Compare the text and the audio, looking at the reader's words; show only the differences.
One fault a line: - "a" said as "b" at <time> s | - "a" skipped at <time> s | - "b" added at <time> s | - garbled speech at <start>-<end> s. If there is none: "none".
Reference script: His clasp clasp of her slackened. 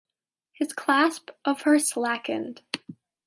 - "clasp" skipped at 1.3 s